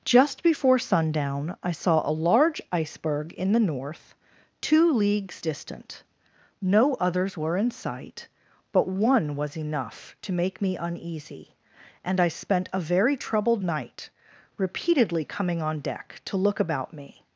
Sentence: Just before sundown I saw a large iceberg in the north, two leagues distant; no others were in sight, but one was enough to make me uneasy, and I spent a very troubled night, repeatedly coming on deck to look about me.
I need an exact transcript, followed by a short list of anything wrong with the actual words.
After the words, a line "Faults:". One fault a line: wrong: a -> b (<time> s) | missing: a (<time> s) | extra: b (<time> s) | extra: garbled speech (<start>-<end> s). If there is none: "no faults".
Just before sundown I saw a large iceberg in the north, two leagues distant; no others were in sight, but one was enough to make me uneasy, and I spent a very troubled night, repeatedly coming on deck to look about me.
Faults:
no faults